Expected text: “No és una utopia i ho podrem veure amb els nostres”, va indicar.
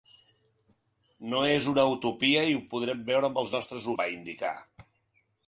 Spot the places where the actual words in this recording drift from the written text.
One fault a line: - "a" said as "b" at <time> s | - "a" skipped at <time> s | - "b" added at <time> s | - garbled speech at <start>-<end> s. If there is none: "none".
none